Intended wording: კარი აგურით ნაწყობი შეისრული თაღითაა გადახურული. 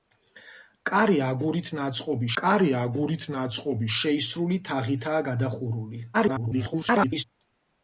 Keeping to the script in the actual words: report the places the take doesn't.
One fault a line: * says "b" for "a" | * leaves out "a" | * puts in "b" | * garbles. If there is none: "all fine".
* puts in "კარი აგურით ნაწყობი"
* garbles